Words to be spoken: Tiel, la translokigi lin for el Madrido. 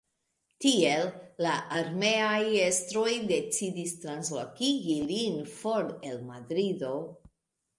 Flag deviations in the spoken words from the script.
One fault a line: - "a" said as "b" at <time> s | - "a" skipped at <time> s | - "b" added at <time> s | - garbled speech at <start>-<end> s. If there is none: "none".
- "armeaj estroj decidis" added at 1.8 s